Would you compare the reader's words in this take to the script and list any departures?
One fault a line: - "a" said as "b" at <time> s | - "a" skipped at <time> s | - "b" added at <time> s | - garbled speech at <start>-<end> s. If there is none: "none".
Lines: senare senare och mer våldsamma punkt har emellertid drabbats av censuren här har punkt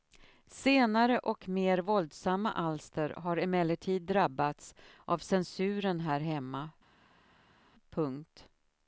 - "senare" skipped at 1.2 s
- "punkt" said as "alster" at 2.5 s
- "har" said as "hemma" at 6.2 s